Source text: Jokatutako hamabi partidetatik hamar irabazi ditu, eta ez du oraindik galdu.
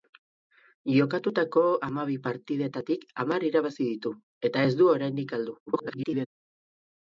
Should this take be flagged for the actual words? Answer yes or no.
yes